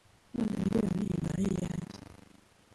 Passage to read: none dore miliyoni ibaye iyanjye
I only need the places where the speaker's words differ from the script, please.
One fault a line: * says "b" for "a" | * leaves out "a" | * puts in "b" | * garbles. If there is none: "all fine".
* leaves out "dore"